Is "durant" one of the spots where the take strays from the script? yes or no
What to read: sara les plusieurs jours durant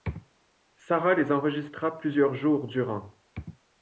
no